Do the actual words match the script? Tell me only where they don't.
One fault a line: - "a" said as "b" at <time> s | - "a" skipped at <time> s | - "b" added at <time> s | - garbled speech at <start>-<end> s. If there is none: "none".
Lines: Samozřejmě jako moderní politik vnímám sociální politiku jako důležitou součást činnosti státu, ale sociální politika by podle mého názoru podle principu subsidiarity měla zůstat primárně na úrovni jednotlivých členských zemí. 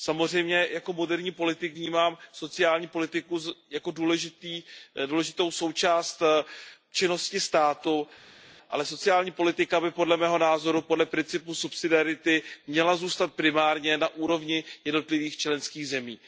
none